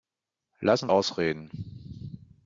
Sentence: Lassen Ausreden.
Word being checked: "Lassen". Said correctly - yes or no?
yes